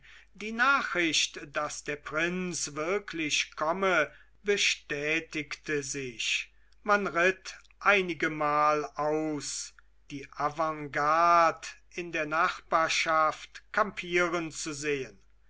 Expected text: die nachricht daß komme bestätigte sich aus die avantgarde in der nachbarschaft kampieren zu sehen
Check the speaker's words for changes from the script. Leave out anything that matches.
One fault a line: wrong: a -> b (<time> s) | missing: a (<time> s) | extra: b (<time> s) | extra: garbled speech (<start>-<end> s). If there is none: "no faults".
extra: der prinz wirklich (1.8 s)
extra: man ritt einigemal (6.8 s)